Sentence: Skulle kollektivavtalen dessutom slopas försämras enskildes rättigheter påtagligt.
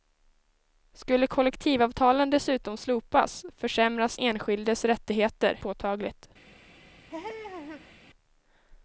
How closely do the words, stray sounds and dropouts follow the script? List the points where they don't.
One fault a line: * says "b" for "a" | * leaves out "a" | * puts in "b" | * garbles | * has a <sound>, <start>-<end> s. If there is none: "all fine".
* has a laugh, 7.1-8.0 s